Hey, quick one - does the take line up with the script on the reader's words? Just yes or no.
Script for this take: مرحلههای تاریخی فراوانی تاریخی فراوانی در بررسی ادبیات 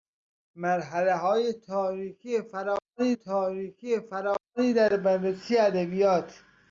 yes